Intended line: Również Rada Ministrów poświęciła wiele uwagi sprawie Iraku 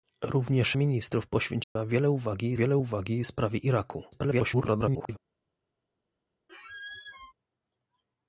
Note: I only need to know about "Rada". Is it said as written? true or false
false